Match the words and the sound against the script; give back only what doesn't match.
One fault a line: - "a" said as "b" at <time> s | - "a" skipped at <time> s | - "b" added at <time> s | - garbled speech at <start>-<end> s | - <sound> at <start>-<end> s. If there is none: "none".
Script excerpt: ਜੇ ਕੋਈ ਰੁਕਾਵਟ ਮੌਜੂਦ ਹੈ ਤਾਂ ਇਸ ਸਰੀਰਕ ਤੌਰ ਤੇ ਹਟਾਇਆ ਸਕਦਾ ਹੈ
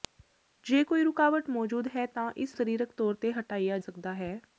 none